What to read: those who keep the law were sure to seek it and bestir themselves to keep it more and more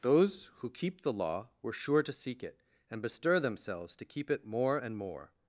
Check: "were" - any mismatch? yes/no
no